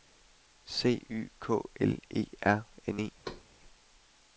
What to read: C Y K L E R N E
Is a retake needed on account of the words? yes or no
no